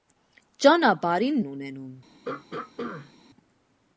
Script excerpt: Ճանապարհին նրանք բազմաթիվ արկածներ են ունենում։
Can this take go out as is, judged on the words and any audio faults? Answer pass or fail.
fail